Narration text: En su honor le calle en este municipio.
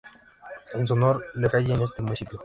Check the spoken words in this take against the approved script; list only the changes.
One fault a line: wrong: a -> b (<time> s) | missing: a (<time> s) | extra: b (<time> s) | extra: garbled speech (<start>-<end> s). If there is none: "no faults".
no faults